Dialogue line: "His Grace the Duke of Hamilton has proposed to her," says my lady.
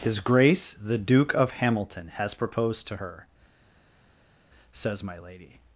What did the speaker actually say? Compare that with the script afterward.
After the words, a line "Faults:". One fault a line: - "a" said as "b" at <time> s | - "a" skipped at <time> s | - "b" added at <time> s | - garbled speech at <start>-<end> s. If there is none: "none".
"His Grace the Duke of Hamilton has proposed to her," says my lady.
Faults:
none